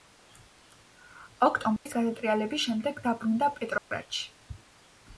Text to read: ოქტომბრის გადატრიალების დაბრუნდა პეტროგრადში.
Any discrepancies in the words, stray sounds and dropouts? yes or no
yes